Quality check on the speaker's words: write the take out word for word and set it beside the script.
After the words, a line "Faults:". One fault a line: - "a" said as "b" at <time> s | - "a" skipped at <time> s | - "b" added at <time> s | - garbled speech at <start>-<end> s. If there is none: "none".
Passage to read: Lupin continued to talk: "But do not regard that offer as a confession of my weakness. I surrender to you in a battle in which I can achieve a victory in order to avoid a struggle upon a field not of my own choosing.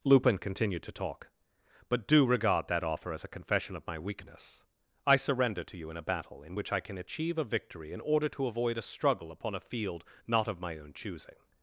Lupin continued to talk: "But do regard that offer as a confession of my weakness. I surrender to you in a battle in which I can achieve a victory in order to avoid a struggle upon a field not of my own choosing.
Faults:
- "not" skipped at 2.2 s